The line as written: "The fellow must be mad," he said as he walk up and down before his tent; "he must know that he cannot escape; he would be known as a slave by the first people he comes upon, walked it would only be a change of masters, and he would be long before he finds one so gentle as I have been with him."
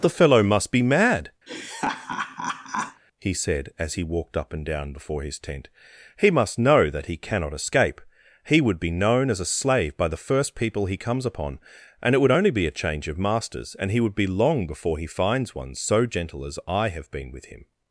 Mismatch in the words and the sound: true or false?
true